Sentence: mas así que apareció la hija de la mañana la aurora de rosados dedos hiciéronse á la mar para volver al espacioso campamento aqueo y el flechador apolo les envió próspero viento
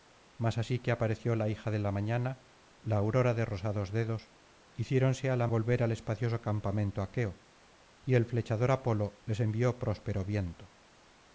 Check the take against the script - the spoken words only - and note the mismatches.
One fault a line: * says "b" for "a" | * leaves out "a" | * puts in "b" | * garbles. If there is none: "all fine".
* leaves out "mar para"